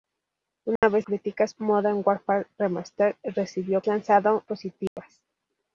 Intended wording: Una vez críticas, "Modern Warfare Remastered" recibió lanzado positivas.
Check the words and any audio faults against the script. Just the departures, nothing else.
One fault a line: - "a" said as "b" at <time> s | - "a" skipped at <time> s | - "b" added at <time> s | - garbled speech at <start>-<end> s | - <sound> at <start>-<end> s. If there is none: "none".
- dropout at 0.8-0.8 s
- dropout at 4.9-5.0 s